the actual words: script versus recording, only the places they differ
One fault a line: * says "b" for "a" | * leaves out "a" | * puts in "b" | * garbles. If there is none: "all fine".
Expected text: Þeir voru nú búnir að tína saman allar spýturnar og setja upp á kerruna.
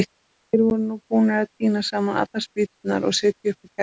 all fine